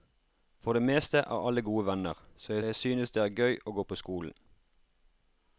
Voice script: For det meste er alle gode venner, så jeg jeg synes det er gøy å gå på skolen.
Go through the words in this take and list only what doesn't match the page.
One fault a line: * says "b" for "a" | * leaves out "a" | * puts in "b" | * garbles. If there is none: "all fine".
all fine